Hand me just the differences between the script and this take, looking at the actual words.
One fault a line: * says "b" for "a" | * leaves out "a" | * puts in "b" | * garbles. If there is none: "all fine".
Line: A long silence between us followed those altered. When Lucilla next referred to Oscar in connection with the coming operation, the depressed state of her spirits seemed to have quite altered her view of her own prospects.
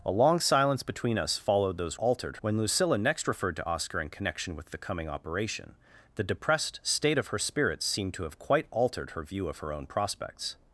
all fine